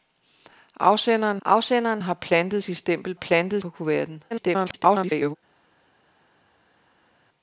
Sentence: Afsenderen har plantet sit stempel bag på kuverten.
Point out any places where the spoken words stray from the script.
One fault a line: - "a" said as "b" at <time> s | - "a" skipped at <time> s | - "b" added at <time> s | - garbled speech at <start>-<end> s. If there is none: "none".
- "afsenderen" added at 1.4 s
- "bag" said as "plantet" at 3.1 s
- garbled speech at 4.3-5.4 s